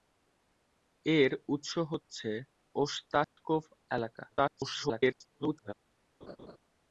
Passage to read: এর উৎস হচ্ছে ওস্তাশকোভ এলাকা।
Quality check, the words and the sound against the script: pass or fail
fail